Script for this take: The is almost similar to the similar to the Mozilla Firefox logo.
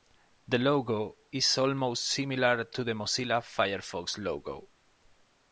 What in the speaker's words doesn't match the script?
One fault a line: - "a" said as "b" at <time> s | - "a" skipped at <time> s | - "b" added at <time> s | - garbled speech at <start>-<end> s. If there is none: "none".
- "logo" added at 0.6 s
- "similar to the" skipped at 2.9 s